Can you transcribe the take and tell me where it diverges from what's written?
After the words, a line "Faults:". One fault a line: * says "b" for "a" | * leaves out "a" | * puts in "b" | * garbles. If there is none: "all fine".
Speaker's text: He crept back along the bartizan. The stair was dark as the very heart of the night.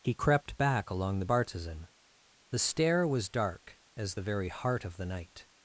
He crept back along the bartizan. The stair was dark as the very heart of the night.
Faults:
all fine